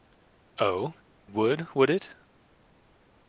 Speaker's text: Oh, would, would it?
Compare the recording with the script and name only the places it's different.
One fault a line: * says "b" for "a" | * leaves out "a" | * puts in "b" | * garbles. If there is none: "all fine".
all fine